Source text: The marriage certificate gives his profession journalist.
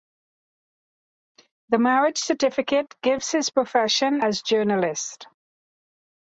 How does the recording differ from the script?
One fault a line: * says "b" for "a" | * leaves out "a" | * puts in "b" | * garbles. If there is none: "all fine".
* puts in "as"